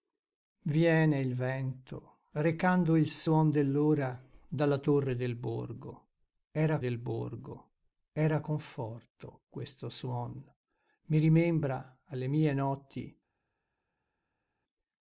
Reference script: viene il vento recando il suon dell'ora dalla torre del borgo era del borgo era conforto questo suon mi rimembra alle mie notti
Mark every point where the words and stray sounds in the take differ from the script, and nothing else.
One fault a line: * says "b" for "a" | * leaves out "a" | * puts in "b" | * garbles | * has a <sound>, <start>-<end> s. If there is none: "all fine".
all fine